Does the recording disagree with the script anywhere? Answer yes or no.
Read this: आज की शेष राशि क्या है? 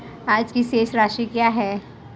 no